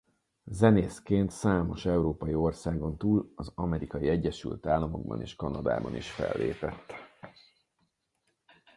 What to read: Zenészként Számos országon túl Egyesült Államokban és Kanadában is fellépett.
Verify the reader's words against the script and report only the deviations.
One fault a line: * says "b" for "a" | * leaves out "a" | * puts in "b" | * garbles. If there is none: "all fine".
* puts in "európai"
* puts in "az Amerikai"